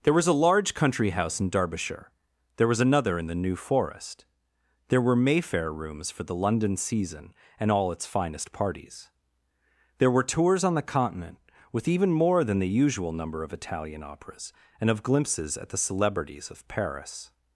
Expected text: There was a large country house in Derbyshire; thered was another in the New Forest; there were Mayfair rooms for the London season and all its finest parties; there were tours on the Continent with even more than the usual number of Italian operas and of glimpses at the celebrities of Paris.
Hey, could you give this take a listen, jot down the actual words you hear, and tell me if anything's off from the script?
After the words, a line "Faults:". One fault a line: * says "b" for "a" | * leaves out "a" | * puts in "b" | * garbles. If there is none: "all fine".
There was a large country house in Derbyshire; there was another in the New Forest; there were Mayfair rooms for the London season and all its finest parties; there were tours on the Continent with even more than the usual number of Italian operas and of glimpses at the celebrities of Paris.
Faults:
* says "there" for "thered"